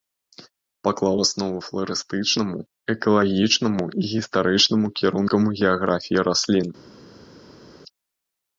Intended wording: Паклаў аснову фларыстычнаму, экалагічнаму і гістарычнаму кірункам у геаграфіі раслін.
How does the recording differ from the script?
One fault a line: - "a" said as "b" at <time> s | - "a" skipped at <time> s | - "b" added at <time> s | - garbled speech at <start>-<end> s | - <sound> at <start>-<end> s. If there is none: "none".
none